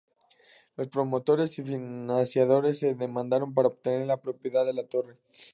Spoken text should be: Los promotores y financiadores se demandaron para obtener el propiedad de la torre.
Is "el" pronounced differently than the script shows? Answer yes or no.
yes